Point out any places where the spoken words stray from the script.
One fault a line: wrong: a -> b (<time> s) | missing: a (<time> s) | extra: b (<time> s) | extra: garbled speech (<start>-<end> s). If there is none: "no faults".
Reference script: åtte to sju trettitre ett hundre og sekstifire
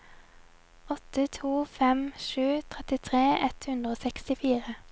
extra: fem (1.6 s)